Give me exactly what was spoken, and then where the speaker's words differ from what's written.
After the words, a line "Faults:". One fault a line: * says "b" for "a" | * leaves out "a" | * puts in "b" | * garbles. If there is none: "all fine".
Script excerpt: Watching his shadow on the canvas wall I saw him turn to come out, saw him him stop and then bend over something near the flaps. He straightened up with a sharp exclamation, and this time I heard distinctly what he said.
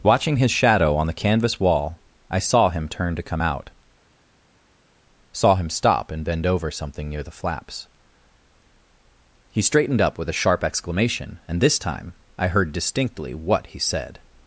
Watching his shadow on the canvas wall I saw him turn to come out, saw him stop and bend over something near the flaps. He straightened up with a sharp exclamation, and this time I heard distinctly what he said.
Faults:
* leaves out "him"
* leaves out "then"